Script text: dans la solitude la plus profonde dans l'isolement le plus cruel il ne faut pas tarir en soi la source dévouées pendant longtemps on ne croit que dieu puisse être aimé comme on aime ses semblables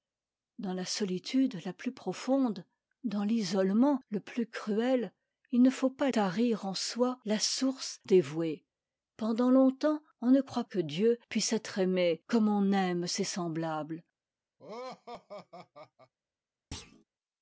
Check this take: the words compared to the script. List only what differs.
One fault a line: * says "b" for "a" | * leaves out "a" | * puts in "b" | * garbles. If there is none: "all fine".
all fine